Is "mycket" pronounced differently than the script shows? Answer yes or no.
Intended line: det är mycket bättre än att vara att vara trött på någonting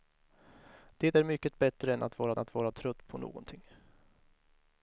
no